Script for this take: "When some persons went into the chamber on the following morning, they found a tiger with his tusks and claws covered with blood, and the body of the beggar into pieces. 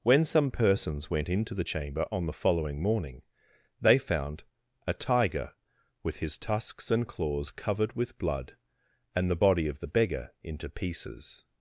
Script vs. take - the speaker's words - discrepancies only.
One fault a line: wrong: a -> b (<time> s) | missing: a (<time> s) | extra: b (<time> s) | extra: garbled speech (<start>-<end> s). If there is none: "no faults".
no faults